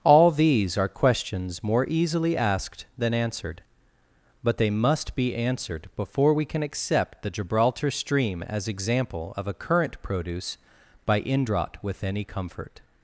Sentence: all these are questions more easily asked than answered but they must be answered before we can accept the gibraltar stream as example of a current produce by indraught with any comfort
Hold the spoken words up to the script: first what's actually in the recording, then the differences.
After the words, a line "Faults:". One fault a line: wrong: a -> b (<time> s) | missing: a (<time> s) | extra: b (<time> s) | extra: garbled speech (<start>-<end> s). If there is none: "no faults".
all these are questions more easily asked than answered but they must be answered before we can accept the gibraltar stream as example of a current produce by indraught with any comfort
Faults:
no faults